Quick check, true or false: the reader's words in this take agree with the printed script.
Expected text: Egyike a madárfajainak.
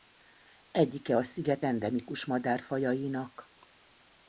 false